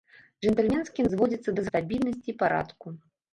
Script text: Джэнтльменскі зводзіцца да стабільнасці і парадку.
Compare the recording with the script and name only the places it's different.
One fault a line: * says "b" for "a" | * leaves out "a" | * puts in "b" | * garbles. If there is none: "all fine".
all fine